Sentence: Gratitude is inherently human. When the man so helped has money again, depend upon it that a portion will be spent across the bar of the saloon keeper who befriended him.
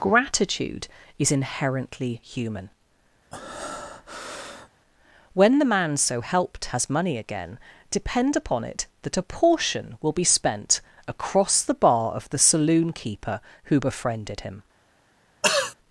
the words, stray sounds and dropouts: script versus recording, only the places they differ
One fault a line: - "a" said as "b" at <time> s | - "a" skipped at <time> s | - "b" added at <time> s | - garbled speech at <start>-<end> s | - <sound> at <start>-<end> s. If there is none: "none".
- breath at 3.3-4.7 s
- throat clearing at 15.4-15.7 s